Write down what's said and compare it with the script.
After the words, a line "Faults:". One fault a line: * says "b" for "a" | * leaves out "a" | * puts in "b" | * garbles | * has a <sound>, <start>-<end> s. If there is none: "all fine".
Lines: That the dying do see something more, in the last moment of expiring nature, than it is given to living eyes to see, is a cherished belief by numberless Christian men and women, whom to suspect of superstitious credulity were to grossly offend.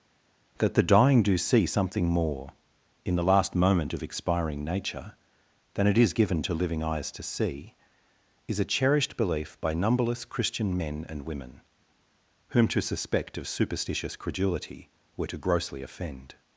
That the dying do see something more, in the last moment of expiring nature, than it is given to living eyes to see, is a cherished belief by numberless Christian men and women, whom to suspect of superstitious credulity were to grossly offend.
Faults:
all fine